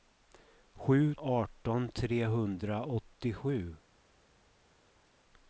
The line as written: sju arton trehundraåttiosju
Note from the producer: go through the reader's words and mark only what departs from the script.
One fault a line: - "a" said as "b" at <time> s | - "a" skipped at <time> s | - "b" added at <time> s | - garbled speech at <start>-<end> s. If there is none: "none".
none